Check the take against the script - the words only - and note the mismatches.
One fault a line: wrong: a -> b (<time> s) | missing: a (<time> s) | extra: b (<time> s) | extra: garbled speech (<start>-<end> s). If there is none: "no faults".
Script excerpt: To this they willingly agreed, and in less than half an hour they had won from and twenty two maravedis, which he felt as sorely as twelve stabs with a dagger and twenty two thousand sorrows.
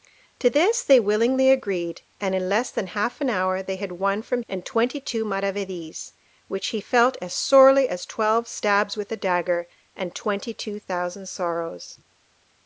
no faults